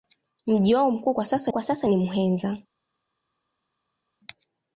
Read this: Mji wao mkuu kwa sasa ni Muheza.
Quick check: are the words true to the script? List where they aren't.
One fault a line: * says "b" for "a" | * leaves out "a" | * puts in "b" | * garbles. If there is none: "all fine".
* puts in "kwa sasa"